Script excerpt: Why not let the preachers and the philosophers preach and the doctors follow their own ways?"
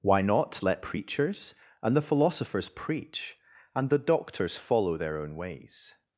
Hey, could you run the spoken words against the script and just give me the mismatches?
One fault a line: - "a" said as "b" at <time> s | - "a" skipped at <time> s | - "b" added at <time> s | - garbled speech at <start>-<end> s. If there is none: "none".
- "the" skipped at 0.8 s